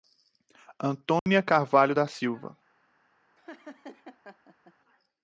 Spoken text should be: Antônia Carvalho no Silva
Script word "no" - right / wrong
wrong